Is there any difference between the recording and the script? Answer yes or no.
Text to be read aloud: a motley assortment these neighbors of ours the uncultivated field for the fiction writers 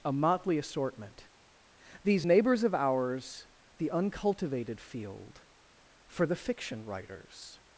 no